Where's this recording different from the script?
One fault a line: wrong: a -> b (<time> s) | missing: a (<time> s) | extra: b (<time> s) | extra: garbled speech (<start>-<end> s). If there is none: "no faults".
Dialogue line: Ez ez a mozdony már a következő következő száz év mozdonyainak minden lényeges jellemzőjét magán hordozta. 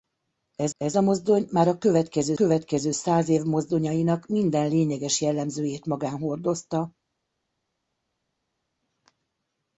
no faults